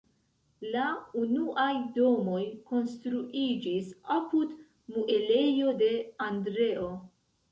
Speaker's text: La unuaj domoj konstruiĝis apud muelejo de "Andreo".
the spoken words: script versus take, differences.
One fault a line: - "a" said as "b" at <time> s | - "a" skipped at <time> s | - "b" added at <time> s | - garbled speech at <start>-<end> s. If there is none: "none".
none